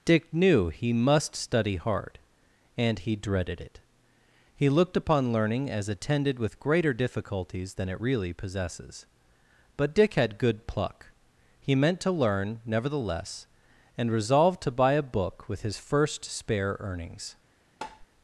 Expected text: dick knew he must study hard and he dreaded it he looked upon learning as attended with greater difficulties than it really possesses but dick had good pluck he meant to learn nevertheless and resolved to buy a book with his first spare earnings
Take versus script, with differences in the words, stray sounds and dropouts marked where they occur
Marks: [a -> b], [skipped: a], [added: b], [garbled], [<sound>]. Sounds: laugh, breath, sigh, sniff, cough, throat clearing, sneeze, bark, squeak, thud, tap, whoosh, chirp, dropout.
dick knew he must study hard and he dreaded it he looked upon learning as attended with greater difficulties than it really possesses but dick had good pluck he meant to learn nevertheless and resolved to buy a book with his first spare earnings [tap]